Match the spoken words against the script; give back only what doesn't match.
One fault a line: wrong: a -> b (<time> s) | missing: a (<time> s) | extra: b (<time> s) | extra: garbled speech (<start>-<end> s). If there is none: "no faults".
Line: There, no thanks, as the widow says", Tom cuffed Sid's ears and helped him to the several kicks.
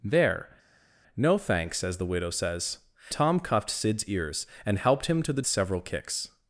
no faults